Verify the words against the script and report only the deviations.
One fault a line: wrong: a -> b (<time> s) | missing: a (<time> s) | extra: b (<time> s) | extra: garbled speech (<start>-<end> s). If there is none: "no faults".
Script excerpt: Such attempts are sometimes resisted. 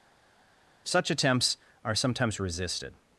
no faults